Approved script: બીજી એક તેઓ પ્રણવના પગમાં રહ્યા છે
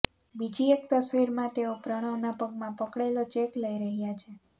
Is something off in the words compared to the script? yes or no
yes